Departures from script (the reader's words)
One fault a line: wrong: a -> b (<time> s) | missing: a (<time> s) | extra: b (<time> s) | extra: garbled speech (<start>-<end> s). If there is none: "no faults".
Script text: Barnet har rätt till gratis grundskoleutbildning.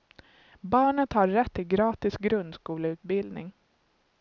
no faults